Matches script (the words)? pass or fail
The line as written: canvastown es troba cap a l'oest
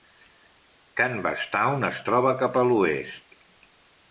pass